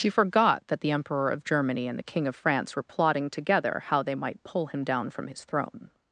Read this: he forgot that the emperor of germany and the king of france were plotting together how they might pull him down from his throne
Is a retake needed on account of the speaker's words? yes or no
yes